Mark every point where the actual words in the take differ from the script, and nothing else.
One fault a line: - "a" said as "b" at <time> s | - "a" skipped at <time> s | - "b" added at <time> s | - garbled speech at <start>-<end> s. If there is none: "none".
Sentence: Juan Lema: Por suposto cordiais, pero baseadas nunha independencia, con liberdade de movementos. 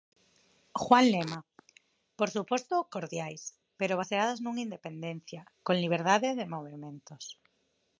none